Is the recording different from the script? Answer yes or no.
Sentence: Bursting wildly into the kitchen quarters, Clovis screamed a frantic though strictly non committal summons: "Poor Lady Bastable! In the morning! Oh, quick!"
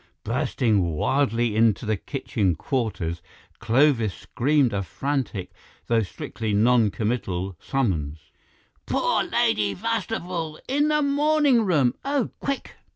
yes